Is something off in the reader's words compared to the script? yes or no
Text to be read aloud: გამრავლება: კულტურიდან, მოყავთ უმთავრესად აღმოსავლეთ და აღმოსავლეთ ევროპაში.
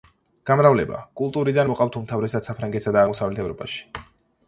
yes